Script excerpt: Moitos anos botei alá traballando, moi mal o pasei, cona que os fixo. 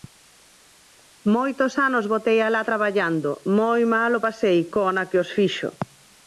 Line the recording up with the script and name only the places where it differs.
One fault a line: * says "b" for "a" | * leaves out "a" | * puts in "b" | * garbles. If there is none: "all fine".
all fine